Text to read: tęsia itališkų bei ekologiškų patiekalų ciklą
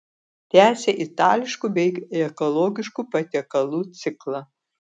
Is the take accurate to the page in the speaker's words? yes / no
yes